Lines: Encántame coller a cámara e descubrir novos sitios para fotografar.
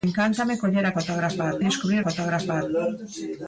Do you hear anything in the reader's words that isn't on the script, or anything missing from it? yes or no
yes